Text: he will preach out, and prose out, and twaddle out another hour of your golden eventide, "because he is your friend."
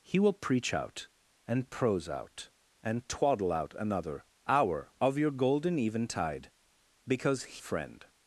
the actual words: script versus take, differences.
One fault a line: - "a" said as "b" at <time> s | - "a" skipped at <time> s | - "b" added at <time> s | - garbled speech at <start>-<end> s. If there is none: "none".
- "he is your" skipped at 7.6 s